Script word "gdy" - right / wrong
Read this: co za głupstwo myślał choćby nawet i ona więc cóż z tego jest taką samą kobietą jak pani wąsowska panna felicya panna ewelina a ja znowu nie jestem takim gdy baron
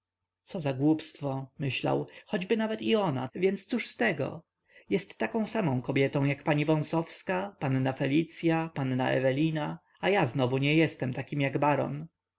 wrong